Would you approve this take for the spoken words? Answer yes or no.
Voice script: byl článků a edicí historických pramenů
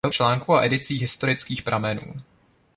yes